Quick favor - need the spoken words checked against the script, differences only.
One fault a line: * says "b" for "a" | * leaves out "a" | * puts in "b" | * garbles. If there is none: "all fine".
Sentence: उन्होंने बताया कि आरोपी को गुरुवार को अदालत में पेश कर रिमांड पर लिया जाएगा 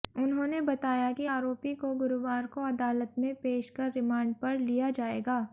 all fine